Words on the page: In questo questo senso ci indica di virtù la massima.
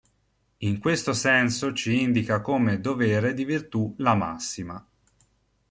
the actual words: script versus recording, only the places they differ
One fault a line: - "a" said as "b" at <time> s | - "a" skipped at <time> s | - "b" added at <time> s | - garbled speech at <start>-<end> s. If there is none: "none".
- "questo" skipped at 1.1 s
- "come dovere" added at 2.4 s